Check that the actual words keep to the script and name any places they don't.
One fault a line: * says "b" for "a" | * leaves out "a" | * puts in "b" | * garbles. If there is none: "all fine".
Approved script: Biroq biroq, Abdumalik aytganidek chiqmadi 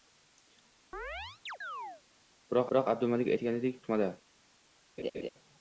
all fine